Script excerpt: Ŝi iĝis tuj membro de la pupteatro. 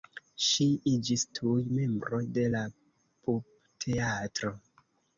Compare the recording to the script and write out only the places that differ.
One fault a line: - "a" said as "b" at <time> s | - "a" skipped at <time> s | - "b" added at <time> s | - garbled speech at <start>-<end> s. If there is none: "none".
none